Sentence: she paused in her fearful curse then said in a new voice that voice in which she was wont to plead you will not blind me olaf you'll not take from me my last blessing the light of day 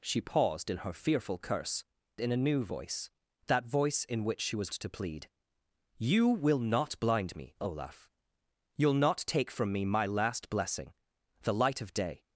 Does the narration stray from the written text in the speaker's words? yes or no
yes